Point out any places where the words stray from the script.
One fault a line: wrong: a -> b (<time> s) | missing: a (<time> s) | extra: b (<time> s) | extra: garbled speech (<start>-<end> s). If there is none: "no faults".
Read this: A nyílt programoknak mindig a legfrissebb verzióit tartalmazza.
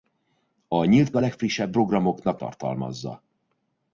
missing: programoknak mindig (1.1 s)
wrong: verzióit -> programoknak (1.7 s)